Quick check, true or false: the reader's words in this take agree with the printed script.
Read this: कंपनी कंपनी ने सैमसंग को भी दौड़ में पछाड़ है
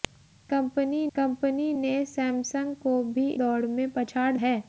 true